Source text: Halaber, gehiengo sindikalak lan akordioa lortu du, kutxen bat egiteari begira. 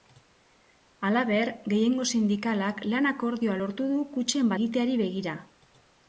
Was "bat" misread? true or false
true